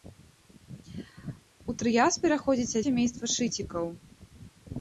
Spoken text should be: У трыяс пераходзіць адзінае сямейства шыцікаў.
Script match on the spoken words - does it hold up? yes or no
no